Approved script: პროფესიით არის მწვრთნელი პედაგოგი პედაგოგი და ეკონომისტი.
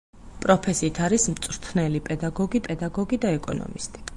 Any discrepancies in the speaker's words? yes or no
no